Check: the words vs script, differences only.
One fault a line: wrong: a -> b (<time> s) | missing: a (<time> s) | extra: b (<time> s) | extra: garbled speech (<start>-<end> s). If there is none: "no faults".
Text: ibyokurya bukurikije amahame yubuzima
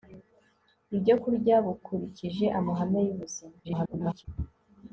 extra: garbled speech (3.6-4.3 s)